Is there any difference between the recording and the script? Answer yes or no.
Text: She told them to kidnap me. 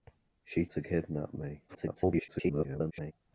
yes